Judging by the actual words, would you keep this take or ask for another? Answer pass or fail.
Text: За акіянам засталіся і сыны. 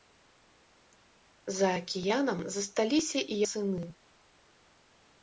pass